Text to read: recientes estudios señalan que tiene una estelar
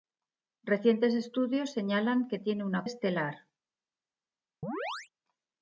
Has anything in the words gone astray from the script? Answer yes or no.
no